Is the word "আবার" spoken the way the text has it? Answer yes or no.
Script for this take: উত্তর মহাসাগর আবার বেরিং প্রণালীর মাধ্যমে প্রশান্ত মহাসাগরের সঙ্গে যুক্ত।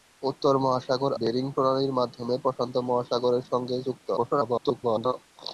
no